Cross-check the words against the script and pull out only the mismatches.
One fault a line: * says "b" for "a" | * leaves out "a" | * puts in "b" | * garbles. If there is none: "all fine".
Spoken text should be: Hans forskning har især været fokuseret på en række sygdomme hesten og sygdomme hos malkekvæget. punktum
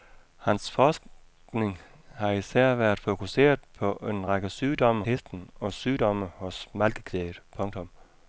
all fine